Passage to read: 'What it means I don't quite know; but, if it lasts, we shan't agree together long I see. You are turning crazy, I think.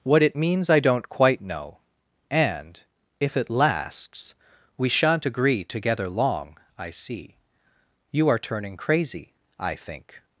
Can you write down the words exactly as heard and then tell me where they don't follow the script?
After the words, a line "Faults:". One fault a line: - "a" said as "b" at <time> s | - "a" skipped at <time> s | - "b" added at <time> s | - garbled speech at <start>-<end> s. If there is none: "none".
'What it means I don't quite know; and, if it lasts, we shan't agree together long I see. You are turning crazy, I think.
Faults:
- "but" said as "and" at 2.3 s